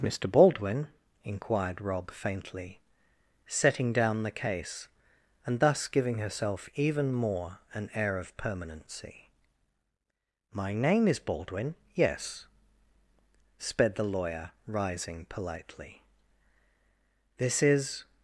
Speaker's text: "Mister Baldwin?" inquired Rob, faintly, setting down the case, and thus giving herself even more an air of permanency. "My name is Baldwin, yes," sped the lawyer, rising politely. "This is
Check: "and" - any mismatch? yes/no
no